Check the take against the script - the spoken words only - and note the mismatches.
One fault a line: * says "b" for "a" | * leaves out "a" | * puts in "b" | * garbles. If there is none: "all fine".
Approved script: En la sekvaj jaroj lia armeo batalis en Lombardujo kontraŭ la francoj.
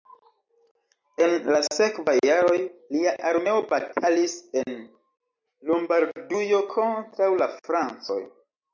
all fine